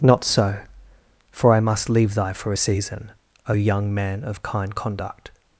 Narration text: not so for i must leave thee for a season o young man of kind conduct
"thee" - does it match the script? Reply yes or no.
no